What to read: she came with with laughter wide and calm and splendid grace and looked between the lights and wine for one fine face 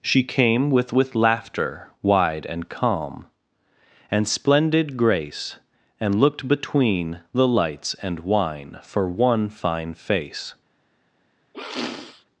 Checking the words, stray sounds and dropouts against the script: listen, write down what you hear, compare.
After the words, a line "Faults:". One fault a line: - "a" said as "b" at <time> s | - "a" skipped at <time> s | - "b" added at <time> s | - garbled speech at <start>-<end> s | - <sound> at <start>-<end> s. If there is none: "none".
she came with with laughter wide and calm and splendid grace and looked between the lights and wine for one fine face
Faults:
- sniff at 11.5-12.3 s